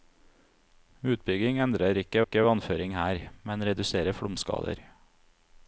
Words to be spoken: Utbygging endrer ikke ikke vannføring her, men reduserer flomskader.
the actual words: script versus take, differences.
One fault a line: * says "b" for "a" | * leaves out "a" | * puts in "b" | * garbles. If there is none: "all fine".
all fine